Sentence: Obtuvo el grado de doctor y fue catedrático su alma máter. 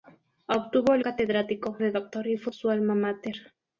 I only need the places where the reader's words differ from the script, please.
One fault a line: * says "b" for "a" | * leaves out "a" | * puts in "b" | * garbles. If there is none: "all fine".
* says "catedrático" for "grado"
* leaves out "catedrático"